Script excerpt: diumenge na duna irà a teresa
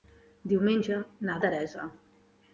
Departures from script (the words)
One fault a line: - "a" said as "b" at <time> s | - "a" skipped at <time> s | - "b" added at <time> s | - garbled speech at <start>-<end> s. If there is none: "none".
- "duna irà a" skipped at 1.4 s